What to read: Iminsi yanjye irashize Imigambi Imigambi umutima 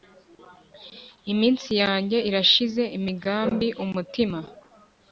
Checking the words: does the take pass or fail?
fail